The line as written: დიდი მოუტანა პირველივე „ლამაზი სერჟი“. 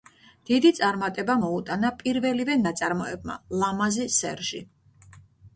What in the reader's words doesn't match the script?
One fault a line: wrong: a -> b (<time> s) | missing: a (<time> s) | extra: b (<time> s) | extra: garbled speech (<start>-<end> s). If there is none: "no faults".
extra: წარმატება (0.8 s)
extra: ნაწარმოებმა (2.7 s)